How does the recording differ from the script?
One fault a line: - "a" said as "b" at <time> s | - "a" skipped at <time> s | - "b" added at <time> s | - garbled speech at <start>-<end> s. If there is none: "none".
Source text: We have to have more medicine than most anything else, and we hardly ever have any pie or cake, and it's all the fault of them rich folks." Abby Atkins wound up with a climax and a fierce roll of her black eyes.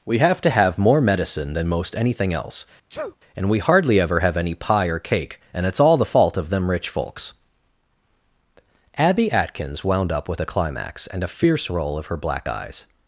none